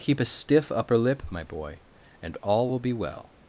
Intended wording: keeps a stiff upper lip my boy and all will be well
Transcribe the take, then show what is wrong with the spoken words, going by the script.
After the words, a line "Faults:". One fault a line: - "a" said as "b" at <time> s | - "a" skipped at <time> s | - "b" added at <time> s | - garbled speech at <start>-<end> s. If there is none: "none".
keep a stiff upper lip my boy and all will be well
Faults:
- "keeps" said as "keep" at 0.0 s